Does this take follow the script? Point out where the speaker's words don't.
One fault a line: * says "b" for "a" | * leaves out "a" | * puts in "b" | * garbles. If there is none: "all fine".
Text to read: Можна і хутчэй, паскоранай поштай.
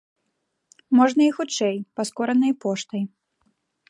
all fine